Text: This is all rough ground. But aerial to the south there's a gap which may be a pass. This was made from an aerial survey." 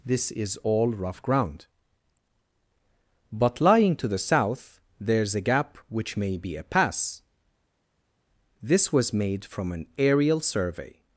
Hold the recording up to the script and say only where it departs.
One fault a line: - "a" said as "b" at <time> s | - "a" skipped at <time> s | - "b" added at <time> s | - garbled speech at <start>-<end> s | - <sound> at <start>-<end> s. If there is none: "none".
- "aerial" said as "lying" at 3.6 s